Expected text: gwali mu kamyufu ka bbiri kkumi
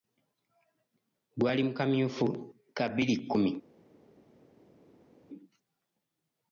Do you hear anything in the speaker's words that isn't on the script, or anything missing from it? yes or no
no